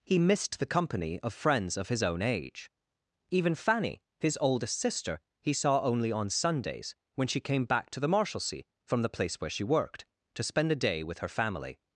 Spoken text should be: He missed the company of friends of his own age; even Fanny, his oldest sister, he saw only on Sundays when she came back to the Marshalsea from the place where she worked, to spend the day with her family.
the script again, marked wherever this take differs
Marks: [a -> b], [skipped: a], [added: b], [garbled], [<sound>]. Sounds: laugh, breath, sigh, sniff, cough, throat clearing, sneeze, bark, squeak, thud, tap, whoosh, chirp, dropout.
He missed the company of friends of his own age; even Fanny, his oldest sister, he saw only on Sundays when she came back to the Marshalsea from the place where she worked, to spend [the -> a] day with her family.